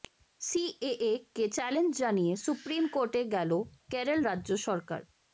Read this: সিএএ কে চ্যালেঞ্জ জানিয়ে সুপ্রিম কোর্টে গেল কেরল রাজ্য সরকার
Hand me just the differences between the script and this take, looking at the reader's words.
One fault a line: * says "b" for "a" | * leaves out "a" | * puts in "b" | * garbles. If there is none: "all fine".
all fine